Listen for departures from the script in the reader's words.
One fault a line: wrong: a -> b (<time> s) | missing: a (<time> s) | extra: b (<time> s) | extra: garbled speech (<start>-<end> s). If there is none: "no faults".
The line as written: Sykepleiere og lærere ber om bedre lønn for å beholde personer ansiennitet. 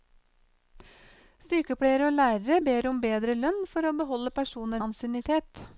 no faults